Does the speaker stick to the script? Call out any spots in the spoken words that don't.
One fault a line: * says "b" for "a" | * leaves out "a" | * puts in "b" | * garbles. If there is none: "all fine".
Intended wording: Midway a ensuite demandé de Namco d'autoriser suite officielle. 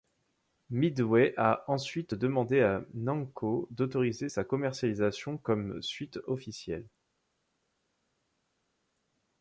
* says "à" for "de"
* puts in "sa commercialisation comme"